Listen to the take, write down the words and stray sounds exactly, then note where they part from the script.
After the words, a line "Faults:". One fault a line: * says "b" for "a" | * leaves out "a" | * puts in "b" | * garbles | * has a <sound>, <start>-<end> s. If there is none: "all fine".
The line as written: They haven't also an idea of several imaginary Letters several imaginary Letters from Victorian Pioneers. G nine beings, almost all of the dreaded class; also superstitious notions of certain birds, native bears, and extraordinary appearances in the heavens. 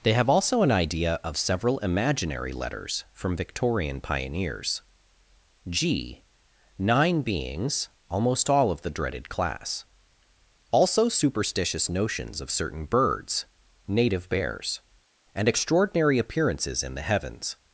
They have also an idea of several imaginary Letters from Victorian Pioneers. G nine beings, almost all of the dreaded class; also superstitious notions of certain birds, native bears, and extraordinary appearances in the heavens.
Faults:
* says "have" for "haven't"
* leaves out "several imaginary Letters"